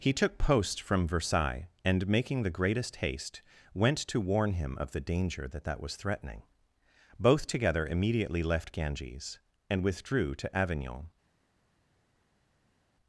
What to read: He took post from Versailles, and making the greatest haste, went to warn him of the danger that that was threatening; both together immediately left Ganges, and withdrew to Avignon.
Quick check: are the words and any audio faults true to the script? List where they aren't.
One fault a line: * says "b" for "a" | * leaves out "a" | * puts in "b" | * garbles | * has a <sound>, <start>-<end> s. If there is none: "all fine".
all fine